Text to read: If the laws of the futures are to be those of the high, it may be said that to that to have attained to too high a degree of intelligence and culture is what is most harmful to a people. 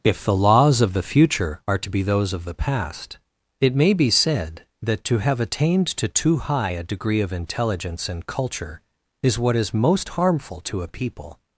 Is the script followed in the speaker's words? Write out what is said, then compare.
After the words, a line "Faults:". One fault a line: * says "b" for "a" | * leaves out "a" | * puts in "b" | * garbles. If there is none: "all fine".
If the laws of the future are to be those of the past, it may be said that to have attained to too high a degree of intelligence and culture is what is most harmful to a people.
Faults:
* says "future" for "futures"
* says "past" for "high"
* leaves out "that to"